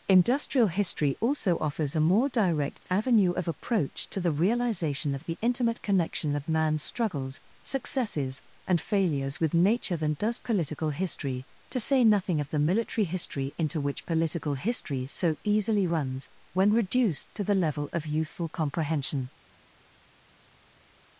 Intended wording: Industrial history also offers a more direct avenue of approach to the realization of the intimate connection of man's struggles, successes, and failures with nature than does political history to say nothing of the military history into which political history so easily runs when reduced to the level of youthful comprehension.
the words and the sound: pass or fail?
pass